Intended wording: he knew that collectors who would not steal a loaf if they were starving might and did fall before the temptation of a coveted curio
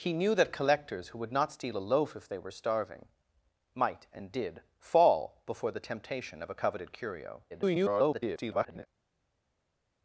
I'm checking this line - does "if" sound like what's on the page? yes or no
yes